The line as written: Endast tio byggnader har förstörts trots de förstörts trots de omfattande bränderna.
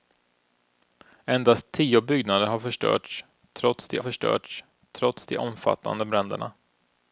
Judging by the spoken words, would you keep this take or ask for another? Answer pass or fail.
pass